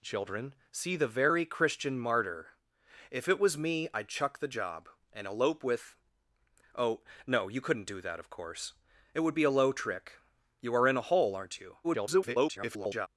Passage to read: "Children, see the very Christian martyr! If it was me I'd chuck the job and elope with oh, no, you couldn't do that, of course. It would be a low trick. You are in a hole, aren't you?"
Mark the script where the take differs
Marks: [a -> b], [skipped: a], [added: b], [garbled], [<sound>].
"Children, see the very Christian martyr! If it was me I'd chuck the job and elope with oh, no, you couldn't do that, of course. It would be a low trick. You are in a hole, aren't you?" [garbled]